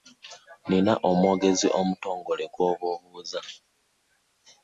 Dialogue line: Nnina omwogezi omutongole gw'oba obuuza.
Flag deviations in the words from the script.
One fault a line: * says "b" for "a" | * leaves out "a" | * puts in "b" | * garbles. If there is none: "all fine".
all fine